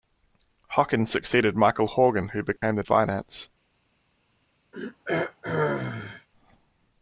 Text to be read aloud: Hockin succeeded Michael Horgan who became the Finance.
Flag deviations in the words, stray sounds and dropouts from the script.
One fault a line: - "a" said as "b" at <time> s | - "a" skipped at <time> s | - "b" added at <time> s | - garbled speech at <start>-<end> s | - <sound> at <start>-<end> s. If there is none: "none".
- dropout at 2.6-2.6 s
- throat clearing at 4.7-6.3 s